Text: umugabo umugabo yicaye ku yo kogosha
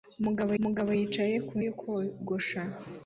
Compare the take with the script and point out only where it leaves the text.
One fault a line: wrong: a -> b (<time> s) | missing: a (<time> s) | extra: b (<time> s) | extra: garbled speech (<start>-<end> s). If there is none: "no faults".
no faults